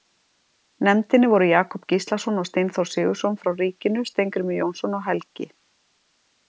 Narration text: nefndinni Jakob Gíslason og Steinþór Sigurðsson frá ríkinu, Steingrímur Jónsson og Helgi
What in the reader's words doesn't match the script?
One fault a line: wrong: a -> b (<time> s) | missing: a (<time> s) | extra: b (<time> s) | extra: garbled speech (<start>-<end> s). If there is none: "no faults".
extra: voru (1.3 s)